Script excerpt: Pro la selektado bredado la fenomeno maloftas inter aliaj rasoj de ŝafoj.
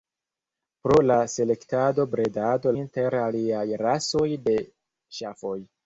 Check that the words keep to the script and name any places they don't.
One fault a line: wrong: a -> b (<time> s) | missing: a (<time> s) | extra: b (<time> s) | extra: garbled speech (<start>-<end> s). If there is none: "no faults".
missing: la fenomeno maloftas (2.8 s)